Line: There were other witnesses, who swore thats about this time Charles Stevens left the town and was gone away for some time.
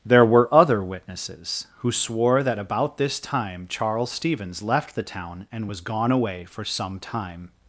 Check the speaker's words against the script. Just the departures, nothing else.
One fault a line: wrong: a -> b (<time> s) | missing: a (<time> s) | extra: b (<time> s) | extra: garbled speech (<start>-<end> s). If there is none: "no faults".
wrong: thats -> that (2.4 s)